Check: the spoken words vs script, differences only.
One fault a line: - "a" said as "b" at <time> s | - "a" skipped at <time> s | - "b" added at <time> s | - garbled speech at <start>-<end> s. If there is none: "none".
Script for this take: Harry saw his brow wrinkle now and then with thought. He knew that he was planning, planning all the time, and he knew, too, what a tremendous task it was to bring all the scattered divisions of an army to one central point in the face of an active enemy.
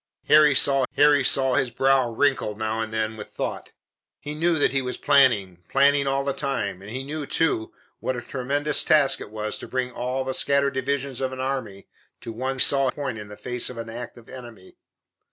- "harry saw" added at 0.9 s
- "central" said as "saw" at 12.6 s